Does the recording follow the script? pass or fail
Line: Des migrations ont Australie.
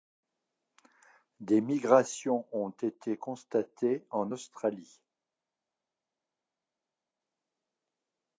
fail